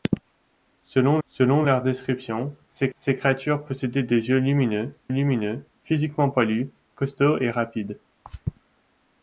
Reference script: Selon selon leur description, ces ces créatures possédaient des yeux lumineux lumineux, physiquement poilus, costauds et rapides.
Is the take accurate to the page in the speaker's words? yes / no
yes